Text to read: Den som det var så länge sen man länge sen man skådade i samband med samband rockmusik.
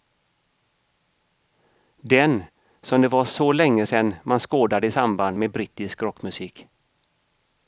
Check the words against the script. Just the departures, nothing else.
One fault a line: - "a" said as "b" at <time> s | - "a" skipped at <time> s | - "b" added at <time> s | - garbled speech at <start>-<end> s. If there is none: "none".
- "länge sen man" skipped at 4.4 s
- "samband" said as "brittisk" at 5.5 s